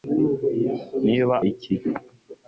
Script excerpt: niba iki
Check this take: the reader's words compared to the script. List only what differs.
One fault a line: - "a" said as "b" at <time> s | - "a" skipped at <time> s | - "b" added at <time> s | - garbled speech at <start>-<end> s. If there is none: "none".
none